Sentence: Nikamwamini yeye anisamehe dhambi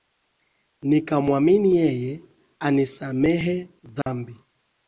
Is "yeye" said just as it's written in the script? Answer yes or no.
yes